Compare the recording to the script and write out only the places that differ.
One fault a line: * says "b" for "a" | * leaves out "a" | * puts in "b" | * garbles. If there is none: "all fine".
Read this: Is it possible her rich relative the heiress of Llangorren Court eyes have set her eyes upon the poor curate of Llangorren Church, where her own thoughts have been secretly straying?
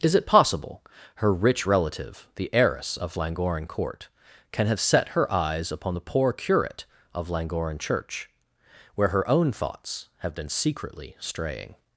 * says "can" for "eyes"